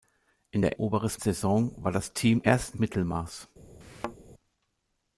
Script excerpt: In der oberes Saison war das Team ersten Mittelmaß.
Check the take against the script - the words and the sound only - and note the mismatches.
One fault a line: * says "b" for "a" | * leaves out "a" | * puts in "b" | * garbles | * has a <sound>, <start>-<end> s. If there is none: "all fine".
* has a thud, 3.8-4.2 s